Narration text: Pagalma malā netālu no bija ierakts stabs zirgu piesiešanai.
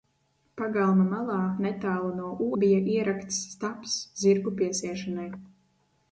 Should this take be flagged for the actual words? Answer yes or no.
no